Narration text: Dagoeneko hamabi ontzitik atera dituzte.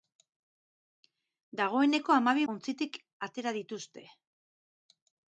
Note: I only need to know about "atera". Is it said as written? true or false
true